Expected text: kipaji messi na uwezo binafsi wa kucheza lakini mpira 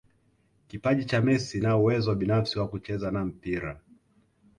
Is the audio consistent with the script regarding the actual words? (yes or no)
no